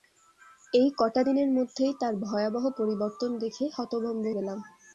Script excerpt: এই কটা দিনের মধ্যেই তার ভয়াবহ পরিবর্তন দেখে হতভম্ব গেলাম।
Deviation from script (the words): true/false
false